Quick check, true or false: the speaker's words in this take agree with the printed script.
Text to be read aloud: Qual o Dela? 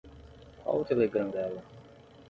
false